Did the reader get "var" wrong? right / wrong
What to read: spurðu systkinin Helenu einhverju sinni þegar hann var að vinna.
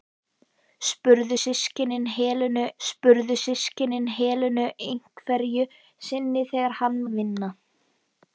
wrong